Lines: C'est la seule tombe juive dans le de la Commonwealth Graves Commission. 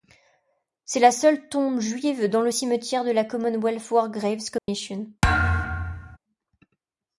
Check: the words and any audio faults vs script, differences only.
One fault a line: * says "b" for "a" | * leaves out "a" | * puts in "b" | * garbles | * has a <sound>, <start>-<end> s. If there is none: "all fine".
* puts in "cimetière"
* puts in "War"
* has a dropout, 4.6-4.7 s
* has a thud, 5.2-6.2 s